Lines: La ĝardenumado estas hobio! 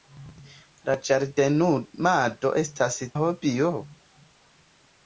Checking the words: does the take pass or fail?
pass